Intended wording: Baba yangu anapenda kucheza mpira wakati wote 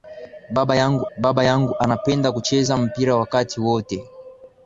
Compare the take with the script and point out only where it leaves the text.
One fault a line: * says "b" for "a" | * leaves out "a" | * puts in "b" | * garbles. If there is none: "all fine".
* puts in "baba yangu"